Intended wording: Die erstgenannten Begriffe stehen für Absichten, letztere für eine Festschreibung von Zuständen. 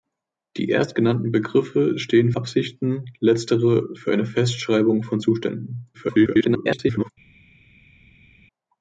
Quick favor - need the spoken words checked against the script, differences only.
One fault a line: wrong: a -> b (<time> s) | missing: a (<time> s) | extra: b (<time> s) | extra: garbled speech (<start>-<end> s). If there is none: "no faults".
missing: für (2.3 s)
extra: garbled speech (5.9-7.1 s)